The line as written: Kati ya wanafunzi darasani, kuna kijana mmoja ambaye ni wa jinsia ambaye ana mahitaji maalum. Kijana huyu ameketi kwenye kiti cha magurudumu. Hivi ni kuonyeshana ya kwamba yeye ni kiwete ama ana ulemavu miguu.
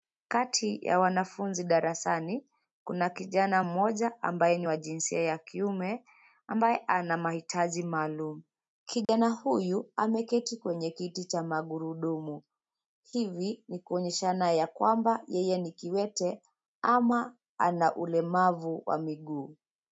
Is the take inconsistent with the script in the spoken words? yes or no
yes